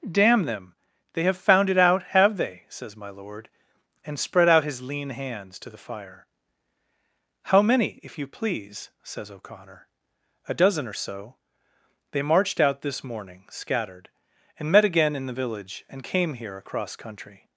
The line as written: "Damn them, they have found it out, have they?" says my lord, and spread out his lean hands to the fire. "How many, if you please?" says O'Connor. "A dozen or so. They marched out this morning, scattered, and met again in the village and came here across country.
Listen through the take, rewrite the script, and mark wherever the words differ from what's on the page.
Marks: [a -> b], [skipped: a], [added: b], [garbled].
"Damn them, they have found it out, have they?" says my lord, and spread out his lean hands to the fire. "How many, if you please?" says O'Connor. "A dozen or so. They marched out this morning, scattered, and met again in the village and came here across country.